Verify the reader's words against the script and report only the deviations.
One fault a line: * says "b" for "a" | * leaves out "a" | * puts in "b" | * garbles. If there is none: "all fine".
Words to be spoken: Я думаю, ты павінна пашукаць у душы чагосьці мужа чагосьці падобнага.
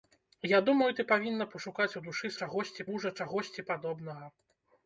all fine